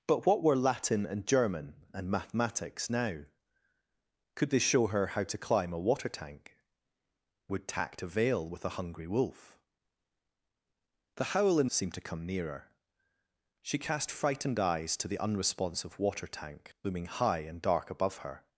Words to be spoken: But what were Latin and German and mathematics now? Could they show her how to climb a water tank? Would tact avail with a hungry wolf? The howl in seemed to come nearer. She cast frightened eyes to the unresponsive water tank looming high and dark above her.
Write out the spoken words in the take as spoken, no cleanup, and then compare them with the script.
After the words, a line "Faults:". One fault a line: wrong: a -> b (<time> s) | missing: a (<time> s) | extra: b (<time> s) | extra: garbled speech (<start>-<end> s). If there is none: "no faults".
But what were Latin and German and mathematics now? Could they show her how to climb a water tank? Would tact avail with a hungry wolf? The howl in seemed to come nearer. She cast frightened eyes to the unresponsive water tank looming high and dark above her.
Faults:
no faults